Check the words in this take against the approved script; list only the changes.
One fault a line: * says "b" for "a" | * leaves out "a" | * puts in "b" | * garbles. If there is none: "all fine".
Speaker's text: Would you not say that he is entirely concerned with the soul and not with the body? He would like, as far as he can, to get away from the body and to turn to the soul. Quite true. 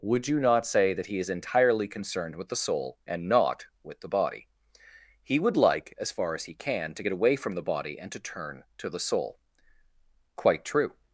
all fine